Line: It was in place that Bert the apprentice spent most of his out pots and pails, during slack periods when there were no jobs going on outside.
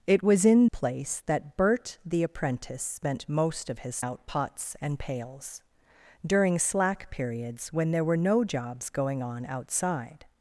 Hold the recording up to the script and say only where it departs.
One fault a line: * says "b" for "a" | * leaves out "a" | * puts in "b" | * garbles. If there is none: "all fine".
all fine